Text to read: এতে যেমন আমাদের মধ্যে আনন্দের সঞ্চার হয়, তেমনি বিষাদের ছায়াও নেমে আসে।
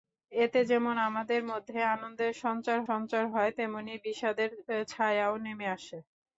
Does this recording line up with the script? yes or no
no